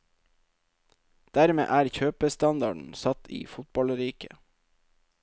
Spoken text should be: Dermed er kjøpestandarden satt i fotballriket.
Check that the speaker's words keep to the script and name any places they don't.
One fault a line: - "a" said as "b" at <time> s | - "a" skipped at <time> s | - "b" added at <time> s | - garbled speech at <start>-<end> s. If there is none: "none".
none